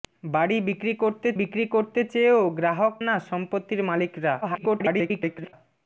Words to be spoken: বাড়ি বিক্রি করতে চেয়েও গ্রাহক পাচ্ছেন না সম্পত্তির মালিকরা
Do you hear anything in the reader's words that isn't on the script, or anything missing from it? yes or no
yes